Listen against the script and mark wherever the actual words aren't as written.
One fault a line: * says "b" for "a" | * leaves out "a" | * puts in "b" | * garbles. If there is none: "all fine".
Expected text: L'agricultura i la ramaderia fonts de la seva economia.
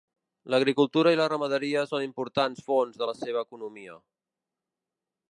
* puts in "són importants"